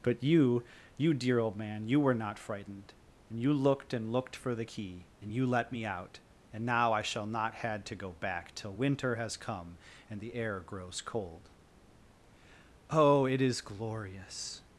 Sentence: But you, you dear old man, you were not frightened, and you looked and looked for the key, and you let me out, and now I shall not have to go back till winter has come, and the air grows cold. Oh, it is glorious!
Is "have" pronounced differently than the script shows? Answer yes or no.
yes